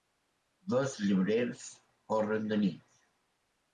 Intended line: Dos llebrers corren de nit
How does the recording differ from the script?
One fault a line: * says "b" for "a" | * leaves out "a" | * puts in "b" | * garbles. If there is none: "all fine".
all fine